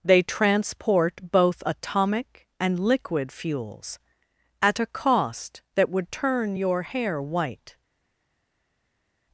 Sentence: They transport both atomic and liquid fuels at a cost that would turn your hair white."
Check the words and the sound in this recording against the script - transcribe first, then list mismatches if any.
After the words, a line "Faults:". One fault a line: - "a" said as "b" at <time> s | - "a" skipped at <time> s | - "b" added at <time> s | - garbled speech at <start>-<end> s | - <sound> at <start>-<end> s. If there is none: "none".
They transport both atomic and liquid fuels at a cost that would turn your hair white."
Faults:
none